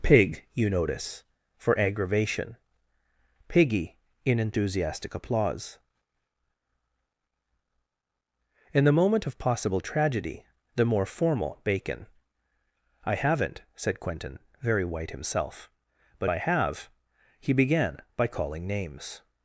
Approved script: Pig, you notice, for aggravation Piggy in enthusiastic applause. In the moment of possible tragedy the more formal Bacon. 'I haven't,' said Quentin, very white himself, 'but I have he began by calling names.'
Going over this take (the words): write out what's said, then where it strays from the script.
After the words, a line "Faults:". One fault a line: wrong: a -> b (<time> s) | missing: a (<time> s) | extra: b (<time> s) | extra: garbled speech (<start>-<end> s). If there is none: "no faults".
Pig, you notice, for aggravation Piggy in enthusiastic applause. In the moment of possible tragedy the more formal Bacon. 'I haven't,' said Quentin, very white himself, 'but I have he began by calling names.'
Faults:
no faults